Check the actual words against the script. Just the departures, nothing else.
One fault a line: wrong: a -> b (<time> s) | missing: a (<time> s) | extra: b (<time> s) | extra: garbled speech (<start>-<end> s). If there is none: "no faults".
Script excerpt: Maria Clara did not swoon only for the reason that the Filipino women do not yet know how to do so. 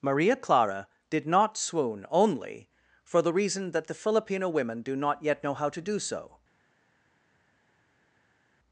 no faults